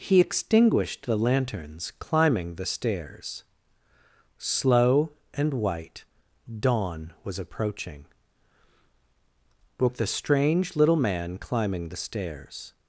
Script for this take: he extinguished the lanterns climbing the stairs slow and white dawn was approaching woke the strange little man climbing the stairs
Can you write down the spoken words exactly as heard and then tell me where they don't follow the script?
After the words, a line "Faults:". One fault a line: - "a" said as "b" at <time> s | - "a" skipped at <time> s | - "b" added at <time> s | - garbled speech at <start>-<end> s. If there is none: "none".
he extinguished the lanterns climbing the stairs slow and white dawn was approaching woke the strange little man climbing the stairs
Faults:
none